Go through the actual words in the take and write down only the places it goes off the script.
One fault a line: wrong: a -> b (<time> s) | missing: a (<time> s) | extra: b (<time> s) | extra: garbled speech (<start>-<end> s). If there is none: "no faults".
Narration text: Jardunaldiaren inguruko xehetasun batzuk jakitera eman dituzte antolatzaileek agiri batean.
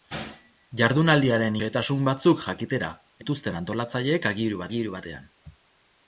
missing: inguruko (1.6 s)
missing: eman (2.9 s)
extra: agiri (4.7 s)